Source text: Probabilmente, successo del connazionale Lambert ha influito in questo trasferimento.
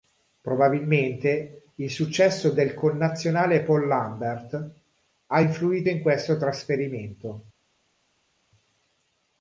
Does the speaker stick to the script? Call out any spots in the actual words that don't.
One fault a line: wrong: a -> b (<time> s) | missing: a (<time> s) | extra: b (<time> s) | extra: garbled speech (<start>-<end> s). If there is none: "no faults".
extra: il (1.8 s)
extra: Paul (3.6 s)